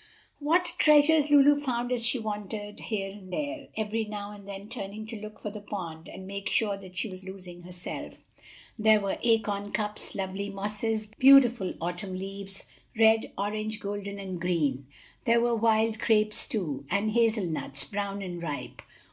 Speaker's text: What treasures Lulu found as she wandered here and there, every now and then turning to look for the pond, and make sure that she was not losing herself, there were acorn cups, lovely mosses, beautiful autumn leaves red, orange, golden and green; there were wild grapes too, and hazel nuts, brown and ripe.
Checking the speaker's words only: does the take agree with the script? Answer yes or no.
no